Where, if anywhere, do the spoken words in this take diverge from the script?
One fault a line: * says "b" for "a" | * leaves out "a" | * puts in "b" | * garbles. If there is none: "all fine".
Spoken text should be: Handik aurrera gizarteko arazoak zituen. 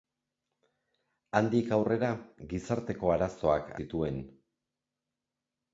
all fine